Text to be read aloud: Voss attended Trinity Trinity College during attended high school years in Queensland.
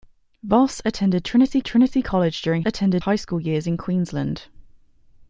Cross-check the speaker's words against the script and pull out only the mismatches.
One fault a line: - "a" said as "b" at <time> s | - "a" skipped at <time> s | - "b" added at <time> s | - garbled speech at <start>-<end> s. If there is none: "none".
none